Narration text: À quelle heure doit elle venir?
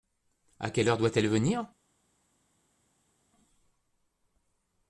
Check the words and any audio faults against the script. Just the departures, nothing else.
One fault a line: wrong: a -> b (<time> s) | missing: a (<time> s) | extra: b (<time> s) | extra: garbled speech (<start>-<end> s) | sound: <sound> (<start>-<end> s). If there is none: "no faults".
no faults